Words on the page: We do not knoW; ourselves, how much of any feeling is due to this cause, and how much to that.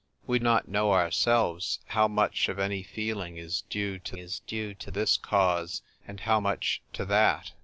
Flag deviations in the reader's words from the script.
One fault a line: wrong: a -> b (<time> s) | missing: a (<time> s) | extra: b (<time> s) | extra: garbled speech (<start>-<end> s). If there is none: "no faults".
missing: do (0.4 s)
extra: is due to (4.2 s)